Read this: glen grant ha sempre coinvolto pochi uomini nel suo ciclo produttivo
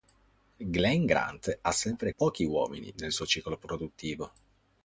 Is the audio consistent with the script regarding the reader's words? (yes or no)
no